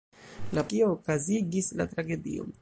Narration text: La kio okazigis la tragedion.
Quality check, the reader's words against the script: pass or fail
pass